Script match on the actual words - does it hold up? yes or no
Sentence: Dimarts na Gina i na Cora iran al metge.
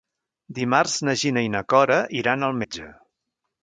yes